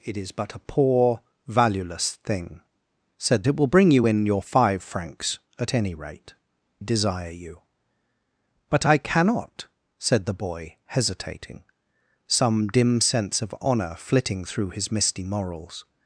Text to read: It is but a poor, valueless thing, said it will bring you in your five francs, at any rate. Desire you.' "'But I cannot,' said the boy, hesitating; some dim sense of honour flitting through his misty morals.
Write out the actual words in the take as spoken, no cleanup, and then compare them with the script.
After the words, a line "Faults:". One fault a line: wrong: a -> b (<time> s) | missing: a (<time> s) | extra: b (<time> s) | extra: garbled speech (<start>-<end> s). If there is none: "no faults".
It is but a poor, valueless thing, said it will bring you in your five francs, at any rate. Desire you.' "'But I cannot,' said the boy, hesitating; some dim sense of honour flitting through his misty morals.
Faults:
no faults